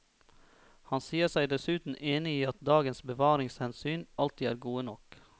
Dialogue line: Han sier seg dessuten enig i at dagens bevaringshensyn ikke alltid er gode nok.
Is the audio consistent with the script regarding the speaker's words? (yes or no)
no